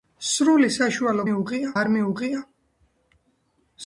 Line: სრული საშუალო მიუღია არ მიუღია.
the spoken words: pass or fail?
pass